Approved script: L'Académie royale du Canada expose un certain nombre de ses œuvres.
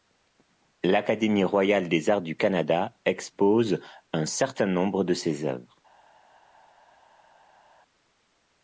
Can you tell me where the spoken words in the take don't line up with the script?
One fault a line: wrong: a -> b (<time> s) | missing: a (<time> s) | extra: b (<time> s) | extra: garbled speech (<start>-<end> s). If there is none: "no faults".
extra: des arts (1.9 s)